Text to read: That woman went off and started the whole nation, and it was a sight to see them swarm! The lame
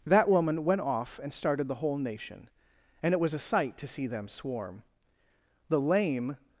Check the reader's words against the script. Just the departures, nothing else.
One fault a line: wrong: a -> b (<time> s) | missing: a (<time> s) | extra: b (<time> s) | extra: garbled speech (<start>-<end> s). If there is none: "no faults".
no faults